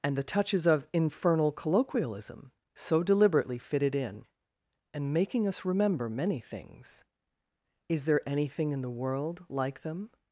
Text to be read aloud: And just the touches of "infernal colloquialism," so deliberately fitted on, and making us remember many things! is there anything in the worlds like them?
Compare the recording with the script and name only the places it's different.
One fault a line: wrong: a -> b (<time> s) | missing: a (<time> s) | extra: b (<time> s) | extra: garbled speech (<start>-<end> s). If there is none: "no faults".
missing: just (0.2 s)
wrong: on -> in (3.9 s)
wrong: worlds -> world (8.9 s)